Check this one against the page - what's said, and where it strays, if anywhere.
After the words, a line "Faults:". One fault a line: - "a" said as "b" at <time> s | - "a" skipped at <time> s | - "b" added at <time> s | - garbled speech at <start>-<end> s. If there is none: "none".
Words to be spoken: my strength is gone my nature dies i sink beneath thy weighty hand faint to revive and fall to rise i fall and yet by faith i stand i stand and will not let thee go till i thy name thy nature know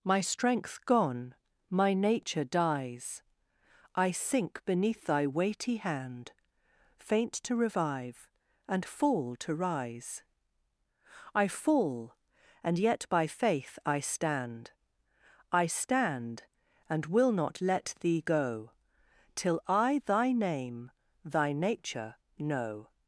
my strength gone my nature dies i sink beneath thy weighty hand faint to revive and fall to rise i fall and yet by faith i stand i stand and will not let thee go till i thy name thy nature know
Faults:
- "is" skipped at 0.8 s